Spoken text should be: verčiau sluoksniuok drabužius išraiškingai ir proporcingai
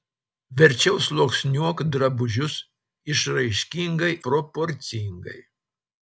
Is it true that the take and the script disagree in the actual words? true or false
true